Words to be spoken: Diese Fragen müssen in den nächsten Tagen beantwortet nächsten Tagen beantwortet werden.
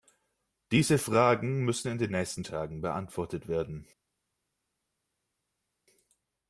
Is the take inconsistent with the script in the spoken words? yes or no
yes